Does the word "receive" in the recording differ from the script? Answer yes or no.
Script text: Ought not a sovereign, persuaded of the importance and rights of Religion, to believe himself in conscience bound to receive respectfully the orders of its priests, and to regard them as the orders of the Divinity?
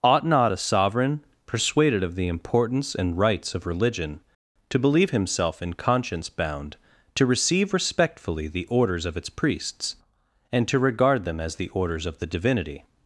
no